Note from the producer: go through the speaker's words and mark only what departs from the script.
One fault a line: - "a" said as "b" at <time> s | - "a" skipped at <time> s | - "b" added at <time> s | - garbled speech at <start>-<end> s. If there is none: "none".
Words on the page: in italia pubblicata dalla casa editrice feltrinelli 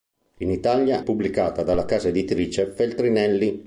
none